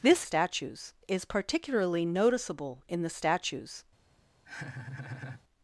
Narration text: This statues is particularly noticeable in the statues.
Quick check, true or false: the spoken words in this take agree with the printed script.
true